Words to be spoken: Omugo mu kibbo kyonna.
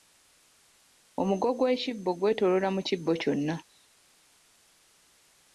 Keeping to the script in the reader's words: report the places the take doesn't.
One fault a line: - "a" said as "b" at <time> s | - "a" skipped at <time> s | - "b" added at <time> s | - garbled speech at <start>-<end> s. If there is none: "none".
- "gw'ekibbo gwetooloola" added at 1.6 s